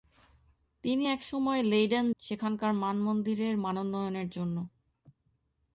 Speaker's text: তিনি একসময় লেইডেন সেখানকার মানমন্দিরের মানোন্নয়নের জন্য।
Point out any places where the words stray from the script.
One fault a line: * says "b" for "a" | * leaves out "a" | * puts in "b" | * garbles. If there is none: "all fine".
all fine